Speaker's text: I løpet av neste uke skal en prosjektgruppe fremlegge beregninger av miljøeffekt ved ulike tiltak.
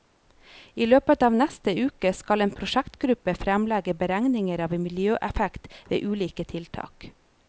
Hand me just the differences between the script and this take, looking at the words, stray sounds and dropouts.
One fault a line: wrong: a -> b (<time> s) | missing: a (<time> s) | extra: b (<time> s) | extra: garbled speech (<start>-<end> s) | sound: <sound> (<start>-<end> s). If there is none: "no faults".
no faults